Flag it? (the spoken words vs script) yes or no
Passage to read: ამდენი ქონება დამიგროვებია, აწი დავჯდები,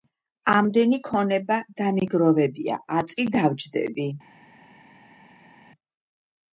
no